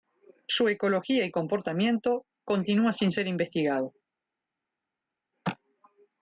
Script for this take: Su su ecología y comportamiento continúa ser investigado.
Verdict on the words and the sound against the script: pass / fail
fail